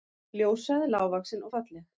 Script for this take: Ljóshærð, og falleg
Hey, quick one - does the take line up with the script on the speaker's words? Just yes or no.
no